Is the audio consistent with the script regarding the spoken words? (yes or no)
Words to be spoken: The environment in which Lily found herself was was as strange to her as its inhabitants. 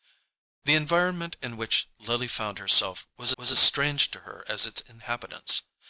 yes